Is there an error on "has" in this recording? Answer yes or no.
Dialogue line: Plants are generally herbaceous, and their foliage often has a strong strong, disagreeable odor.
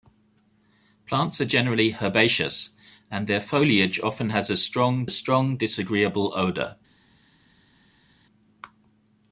no